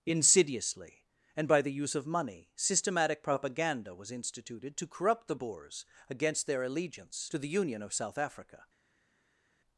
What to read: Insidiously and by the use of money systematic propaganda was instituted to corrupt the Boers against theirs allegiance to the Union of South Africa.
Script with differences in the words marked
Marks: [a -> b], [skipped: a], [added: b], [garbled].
Insidiously and by the use of money systematic propaganda was instituted to corrupt the Boers against [theirs -> their] allegiance to the Union of South Africa.